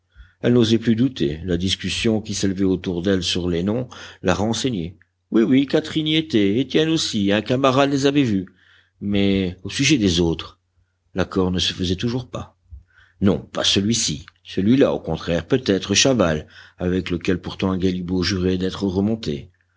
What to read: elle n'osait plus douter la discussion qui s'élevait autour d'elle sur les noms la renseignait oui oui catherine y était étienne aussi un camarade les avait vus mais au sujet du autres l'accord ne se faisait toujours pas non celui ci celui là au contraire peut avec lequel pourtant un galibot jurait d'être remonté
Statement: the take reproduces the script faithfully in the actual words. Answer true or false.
false